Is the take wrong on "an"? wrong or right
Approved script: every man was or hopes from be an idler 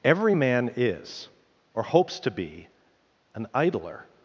right